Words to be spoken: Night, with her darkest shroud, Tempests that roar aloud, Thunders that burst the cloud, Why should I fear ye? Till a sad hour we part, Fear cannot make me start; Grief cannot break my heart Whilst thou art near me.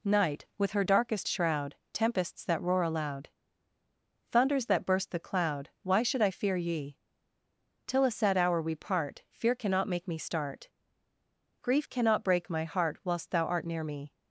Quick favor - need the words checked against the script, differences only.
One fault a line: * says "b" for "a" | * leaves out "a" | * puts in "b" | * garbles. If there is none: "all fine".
all fine